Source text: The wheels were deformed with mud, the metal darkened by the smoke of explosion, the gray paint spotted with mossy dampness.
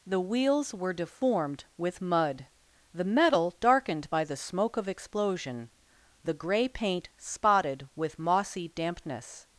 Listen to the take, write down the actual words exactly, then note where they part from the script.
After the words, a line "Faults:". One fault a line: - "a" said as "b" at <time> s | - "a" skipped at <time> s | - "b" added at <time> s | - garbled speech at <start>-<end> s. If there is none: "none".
The wheels were deformed with mud, the metal darkened by the smoke of explosion, the gray paint spotted with mossy dampness.
Faults:
none